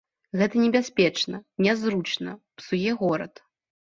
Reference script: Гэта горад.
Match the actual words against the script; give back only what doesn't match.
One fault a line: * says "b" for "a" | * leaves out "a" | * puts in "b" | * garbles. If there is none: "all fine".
* puts in "небяспечна нязручна псуе"